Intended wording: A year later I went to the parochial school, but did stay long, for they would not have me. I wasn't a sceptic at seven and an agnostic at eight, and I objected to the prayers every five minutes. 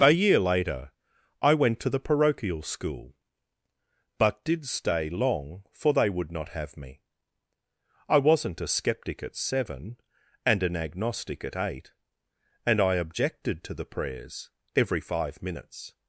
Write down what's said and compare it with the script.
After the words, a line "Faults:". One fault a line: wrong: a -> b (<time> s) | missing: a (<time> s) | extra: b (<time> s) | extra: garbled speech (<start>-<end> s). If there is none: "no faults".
A year later I went to the parochial school, but did stay long, for they would not have me. I wasn't a sceptic at seven and an agnostic at eight, and I objected to the prayers every five minutes.
Faults:
no faults